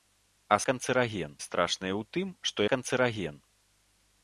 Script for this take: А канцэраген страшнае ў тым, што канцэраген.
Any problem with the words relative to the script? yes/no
no